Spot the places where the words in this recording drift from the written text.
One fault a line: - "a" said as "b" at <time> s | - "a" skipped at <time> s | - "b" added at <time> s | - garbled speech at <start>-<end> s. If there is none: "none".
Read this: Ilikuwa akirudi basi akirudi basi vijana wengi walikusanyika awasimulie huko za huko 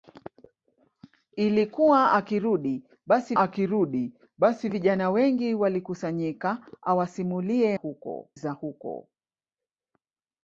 none